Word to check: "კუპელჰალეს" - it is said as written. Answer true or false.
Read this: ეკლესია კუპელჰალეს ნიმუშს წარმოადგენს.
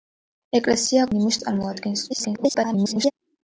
false